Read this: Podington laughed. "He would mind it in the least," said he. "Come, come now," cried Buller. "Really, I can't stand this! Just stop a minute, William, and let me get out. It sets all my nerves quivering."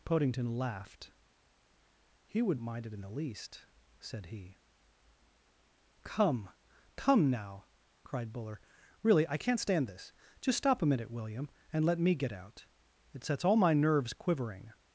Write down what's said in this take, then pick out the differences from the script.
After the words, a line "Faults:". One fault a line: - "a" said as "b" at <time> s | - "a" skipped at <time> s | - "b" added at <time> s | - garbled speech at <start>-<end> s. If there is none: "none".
Podington laughed. "He would mind it in the least," said he. "Come, come now," cried Buller. "Really, I can't stand this! Just stop a minute, William, and let me get out. It sets all my nerves quivering."
Faults:
none